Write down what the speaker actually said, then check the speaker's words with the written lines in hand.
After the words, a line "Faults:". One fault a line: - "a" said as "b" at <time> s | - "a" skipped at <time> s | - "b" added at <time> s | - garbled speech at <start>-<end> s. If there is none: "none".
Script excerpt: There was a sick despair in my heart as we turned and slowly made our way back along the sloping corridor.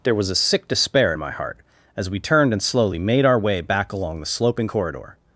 There was a sick despair in my heart as we turned and slowly made our way back along the sloping corridor.
Faults:
none